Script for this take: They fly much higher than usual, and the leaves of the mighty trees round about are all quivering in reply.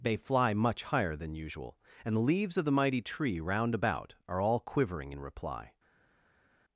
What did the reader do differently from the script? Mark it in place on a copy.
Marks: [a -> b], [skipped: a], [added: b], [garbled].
They fly much higher than usual, and the leaves of the mighty [trees -> tree] round about are all quivering in reply.